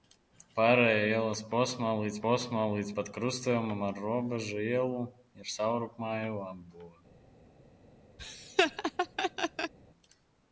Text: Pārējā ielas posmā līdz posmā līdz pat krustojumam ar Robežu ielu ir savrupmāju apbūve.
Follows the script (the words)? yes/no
yes